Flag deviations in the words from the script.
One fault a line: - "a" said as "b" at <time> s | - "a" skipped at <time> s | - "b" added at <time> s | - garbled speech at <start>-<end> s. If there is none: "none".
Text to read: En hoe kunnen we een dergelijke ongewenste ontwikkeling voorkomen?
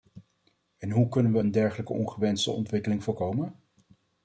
none